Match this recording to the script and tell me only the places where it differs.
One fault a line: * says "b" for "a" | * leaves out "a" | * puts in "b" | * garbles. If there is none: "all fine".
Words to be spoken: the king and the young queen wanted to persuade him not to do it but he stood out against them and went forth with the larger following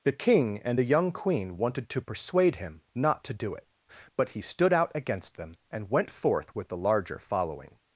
all fine